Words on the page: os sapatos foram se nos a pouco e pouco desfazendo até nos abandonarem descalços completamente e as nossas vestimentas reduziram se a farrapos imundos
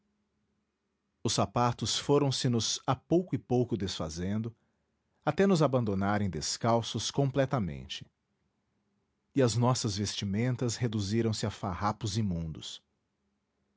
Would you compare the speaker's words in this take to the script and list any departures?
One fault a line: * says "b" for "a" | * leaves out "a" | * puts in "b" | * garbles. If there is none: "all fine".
all fine